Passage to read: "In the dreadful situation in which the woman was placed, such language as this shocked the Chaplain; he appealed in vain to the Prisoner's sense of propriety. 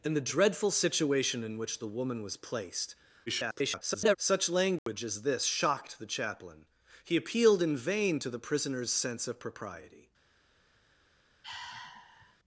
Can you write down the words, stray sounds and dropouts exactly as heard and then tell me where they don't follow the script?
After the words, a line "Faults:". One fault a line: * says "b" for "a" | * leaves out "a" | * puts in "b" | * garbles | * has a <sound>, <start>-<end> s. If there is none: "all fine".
"In the dreadful situation in which the woman was placed, [garbled] such language as this shocked the Chaplain; he appealed in vain to the Prisoner's sense of propriety.
Faults:
* garbles
* has a dropout, 4.8-4.9 s
* has a sigh, 11.4-12.4 s